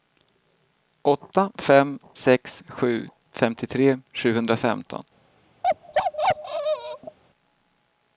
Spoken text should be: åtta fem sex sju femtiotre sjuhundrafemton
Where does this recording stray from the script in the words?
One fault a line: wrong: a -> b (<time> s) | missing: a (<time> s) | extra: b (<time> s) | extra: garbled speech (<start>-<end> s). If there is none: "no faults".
no faults